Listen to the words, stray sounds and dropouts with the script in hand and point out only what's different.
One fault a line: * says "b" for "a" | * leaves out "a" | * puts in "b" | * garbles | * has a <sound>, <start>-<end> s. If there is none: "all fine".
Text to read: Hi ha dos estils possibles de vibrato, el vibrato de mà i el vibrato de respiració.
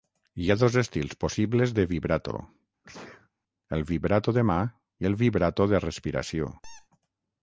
* has a sneeze, 2.8-3.3 s
* has a squeak, 6.6-6.9 s